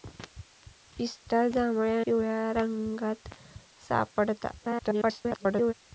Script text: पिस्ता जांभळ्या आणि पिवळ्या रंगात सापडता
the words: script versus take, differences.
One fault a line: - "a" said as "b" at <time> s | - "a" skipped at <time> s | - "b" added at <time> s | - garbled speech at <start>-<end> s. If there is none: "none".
- "आणि" skipped at 2.0 s
- garbled speech at 4.6-5.7 s